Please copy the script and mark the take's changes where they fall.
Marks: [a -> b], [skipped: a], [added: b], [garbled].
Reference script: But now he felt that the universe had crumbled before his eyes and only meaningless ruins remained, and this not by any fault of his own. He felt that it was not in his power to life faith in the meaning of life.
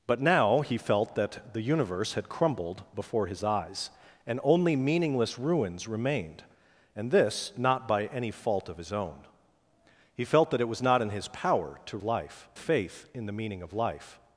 But now he felt that the universe had crumbled before his eyes and only meaningless ruins remained, and this not by any fault of his own. He felt that it was not in his power to life faith in the meaning of life.